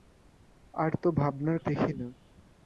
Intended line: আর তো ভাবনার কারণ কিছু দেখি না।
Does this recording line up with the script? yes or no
no